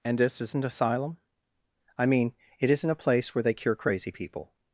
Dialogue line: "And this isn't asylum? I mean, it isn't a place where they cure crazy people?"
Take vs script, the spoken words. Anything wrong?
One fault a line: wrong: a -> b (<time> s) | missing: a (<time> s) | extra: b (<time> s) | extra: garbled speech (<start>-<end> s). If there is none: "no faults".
no faults